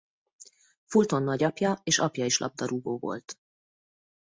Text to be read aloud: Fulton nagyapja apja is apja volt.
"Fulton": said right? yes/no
yes